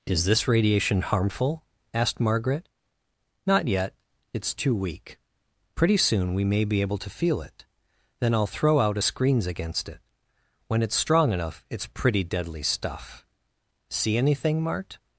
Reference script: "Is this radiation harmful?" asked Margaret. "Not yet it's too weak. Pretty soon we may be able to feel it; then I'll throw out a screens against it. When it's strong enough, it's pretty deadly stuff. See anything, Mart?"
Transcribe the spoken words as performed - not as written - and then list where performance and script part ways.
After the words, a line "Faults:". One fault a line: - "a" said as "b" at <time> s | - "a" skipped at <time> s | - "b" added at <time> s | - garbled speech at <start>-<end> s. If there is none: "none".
"Is this radiation harmful?" asked Margaret. "Not yet it's too weak. Pretty soon we may be able to feel it; then I'll throw out a screens against it. When it's strong enough, it's pretty deadly stuff. See anything, Mart?"
Faults:
none